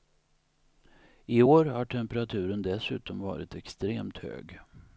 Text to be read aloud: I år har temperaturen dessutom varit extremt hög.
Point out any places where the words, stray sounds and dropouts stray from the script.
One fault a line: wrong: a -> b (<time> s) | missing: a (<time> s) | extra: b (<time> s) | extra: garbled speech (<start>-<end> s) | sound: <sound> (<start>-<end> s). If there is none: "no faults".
no faults